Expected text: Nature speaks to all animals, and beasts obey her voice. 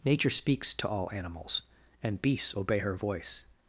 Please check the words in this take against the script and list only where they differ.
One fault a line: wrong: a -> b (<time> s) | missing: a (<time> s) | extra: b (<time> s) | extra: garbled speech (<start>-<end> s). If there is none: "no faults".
no faults